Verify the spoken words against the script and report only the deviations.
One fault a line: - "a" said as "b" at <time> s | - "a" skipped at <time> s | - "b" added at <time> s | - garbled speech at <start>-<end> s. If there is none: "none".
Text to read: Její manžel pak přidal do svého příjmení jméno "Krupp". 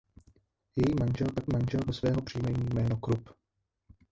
- "přidal" said as "manžel" at 1.5 s